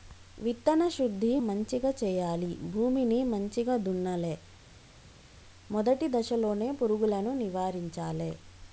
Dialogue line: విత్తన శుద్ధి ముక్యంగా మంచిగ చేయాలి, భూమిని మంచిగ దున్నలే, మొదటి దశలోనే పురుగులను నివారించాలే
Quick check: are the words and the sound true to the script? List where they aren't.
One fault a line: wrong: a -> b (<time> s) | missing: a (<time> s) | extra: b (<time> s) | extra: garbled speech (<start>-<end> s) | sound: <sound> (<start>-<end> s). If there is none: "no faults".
missing: ముక్యంగా (1.4 s)